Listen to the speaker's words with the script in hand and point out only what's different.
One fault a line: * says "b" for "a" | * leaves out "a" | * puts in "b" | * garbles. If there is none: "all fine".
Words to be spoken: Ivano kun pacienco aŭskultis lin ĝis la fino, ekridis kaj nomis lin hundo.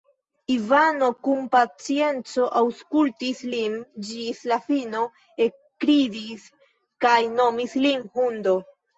all fine